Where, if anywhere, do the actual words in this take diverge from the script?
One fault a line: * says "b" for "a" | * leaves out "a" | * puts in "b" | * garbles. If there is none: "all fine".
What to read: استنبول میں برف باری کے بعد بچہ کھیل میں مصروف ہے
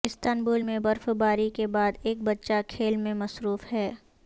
* puts in "ایک"